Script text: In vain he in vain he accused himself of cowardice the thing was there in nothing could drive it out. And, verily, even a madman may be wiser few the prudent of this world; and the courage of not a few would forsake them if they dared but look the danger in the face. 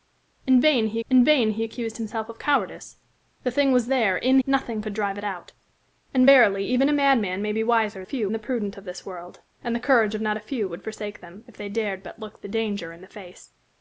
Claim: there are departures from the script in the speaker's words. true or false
false